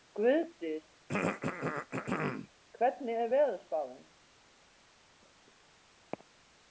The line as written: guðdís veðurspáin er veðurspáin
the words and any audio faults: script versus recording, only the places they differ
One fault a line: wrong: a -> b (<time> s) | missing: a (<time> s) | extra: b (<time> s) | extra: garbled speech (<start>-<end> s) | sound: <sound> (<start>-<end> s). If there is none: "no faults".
sound: throat clearing (1.1-2.5 s)
wrong: veðurspáin -> hvernig (2.8 s)